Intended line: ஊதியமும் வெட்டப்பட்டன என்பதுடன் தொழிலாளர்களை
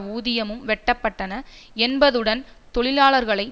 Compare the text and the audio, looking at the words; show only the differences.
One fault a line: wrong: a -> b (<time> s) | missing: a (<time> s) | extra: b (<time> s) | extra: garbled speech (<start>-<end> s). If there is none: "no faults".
no faults